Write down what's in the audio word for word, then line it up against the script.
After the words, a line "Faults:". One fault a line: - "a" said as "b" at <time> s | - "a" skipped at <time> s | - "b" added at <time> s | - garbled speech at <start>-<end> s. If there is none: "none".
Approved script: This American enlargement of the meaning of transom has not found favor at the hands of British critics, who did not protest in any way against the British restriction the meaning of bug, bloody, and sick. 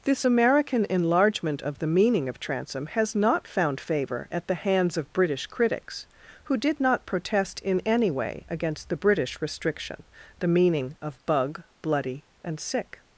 This American enlargement of the meaning of transom has not found favor at the hands of British critics, who did not protest in any way against the British restriction the meaning of bug, bloody, and sick.
Faults:
none